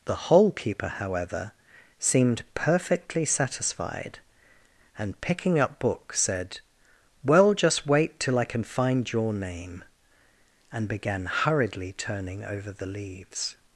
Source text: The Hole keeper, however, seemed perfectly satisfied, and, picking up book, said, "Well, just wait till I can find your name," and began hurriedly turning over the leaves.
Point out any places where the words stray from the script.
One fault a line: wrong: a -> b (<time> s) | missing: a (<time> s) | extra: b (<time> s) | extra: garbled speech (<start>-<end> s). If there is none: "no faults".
no faults